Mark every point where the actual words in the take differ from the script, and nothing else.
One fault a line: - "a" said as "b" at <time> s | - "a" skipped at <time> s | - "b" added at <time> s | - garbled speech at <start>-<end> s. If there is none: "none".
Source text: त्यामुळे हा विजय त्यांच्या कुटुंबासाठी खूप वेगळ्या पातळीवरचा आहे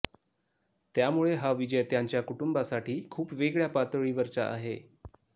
none